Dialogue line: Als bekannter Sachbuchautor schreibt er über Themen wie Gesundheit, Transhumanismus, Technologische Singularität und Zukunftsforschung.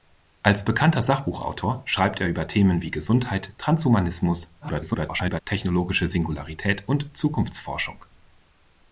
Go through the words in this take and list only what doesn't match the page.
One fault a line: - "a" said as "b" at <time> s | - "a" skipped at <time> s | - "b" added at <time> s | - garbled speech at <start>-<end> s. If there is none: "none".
- garbled speech at 4.6-5.4 s